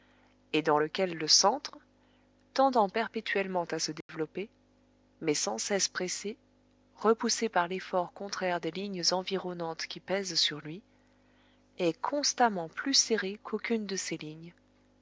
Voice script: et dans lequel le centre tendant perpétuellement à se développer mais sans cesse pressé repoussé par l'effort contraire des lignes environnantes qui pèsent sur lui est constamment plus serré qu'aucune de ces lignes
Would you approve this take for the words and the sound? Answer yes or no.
no